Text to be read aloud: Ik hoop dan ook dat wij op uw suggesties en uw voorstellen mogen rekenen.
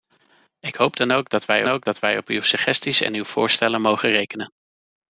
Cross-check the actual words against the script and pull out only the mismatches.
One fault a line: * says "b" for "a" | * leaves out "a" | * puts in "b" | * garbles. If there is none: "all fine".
* puts in "ook dat wij"